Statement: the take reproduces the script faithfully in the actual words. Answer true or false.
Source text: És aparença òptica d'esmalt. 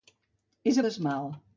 false